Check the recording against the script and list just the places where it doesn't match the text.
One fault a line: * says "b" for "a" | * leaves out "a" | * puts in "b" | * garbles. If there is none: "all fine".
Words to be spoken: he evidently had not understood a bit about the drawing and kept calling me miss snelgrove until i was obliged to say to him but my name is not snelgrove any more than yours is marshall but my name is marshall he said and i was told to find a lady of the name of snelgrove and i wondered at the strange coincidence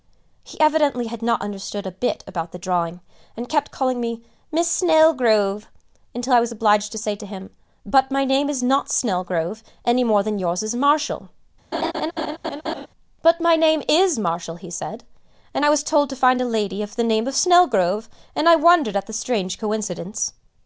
all fine